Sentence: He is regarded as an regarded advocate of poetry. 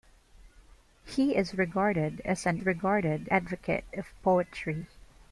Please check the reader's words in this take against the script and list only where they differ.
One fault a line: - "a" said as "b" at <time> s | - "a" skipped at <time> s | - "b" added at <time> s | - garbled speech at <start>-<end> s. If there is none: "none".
none